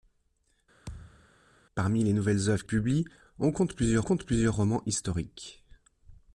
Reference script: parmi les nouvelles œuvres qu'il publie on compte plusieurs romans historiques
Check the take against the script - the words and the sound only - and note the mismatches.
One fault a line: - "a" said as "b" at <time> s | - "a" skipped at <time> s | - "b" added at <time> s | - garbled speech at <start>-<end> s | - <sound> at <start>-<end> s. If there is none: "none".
- thud at 0.9-1.3 s
- "qu'il" skipped at 2.7 s
- "compte plusieurs" added at 4.0 s